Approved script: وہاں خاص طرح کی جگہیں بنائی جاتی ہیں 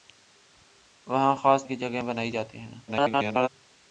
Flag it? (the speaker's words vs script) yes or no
yes